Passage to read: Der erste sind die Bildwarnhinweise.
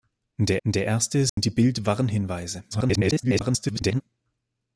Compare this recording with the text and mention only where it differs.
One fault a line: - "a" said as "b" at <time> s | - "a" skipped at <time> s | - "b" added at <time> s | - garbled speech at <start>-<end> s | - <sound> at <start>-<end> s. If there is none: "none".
- "der" added at 0.7 s
- dropout at 1.3-1.4 s
- garbled speech at 2.7-4.0 s